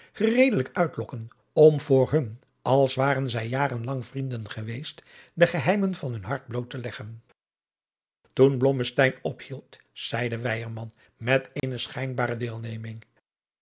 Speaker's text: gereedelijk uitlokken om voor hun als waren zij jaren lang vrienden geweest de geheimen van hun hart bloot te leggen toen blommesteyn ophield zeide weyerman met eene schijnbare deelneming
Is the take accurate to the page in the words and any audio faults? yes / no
no